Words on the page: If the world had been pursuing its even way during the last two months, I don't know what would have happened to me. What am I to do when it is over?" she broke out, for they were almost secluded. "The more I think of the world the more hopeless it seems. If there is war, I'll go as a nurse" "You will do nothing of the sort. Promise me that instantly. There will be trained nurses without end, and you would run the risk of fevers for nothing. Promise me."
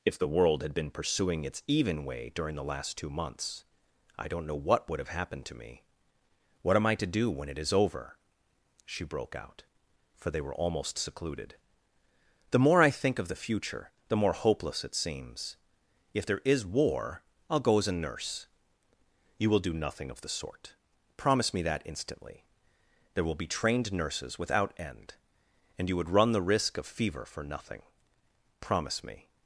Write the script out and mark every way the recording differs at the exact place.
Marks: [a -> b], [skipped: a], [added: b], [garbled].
If the world had been pursuing its even way during the last two months, I don't know what would have happened to me. What am I to do when it is over?" she broke out, for they were almost secluded. "The more I think of the [world -> future] the more hopeless it seems. If there is war, I'll go as a nurse" "You will do nothing of the sort. Promise me that instantly. There will be trained nurses without end, and you would run the risk of [fevers -> fever] for nothing. Promise me."